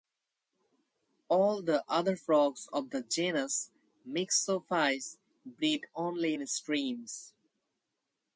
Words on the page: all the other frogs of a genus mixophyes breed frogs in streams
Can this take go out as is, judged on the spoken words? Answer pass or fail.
fail